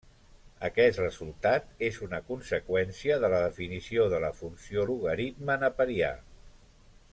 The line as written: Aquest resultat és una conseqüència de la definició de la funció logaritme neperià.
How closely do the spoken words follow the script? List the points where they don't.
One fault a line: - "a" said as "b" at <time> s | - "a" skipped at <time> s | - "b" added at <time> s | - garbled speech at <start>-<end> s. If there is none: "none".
none